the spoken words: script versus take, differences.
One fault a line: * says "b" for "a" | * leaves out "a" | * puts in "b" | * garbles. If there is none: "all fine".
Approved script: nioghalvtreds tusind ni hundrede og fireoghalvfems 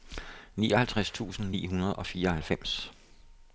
all fine